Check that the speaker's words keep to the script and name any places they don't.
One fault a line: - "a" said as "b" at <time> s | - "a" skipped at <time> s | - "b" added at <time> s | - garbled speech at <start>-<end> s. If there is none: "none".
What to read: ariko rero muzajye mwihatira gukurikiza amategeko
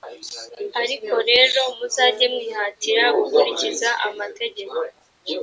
none